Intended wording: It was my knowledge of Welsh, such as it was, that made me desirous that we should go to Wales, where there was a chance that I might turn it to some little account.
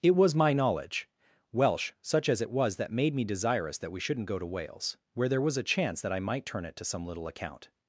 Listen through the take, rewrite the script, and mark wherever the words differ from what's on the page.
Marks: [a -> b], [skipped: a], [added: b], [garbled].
It was my knowledge [skipped: of] Welsh, such as it was, that made me desirous that we [should -> shouldn't] go to Wales, where there was a chance that I might turn it to some little account.